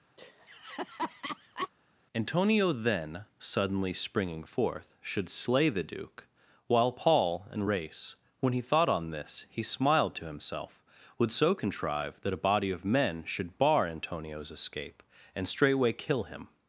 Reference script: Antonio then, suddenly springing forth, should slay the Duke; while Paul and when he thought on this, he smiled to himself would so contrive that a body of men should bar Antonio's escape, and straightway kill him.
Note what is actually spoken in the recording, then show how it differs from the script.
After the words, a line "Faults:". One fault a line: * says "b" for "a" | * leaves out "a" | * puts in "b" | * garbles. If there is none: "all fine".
Antonio then, suddenly springing forth, should slay the Duke; while Paul and race when he thought on this, he smiled to himself would so contrive that a body of men should bar Antonio's escape, and straightway kill him.
Faults:
* puts in "race"